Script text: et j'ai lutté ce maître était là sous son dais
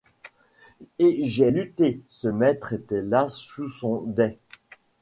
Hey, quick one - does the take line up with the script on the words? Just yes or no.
yes